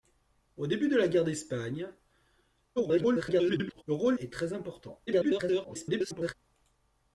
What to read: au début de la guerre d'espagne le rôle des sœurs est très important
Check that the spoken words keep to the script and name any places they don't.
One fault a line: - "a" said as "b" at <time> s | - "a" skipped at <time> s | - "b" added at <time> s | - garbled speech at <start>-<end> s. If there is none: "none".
- garbled speech at 2.8-3.8 s
- "des sœurs" skipped at 4.2 s
- garbled speech at 5.1-6.3 s